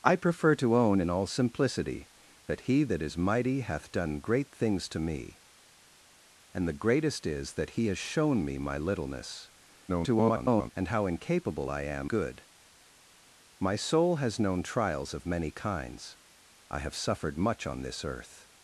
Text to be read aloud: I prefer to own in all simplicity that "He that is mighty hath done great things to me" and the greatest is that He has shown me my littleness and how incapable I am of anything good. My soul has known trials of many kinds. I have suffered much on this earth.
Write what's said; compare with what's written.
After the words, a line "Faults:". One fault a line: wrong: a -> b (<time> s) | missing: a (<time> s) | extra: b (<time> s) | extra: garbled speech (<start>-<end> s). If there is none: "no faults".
I prefer to own in all simplicity that "He that is mighty hath done great things to me" and the greatest is that He has shown me my littleness [garbled] and how incapable I am good. My soul has known trials of many kinds. I have suffered much on this earth.
Faults:
extra: garbled speech (9.9-10.7 s)
missing: of anything (12.1 s)